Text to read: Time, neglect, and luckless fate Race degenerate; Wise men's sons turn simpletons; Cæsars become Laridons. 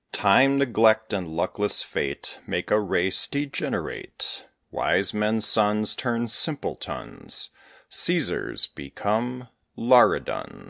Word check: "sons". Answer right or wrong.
right